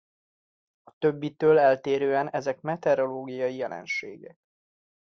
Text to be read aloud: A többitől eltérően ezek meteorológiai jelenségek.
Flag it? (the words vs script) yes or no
no